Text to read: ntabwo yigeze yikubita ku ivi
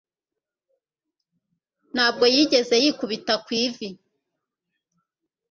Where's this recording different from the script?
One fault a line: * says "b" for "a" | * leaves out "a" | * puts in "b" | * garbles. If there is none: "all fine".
all fine